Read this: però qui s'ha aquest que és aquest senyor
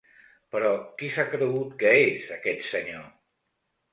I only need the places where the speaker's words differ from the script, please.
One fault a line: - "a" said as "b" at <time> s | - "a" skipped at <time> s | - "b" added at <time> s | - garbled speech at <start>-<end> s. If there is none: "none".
- "aquest" said as "cregut" at 1.3 s